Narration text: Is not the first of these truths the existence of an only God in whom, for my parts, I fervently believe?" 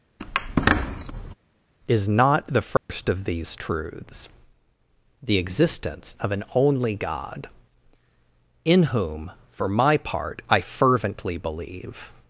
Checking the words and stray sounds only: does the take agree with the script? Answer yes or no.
no